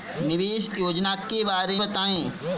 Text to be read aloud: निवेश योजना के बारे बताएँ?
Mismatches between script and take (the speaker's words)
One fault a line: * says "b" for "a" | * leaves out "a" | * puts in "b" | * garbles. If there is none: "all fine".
all fine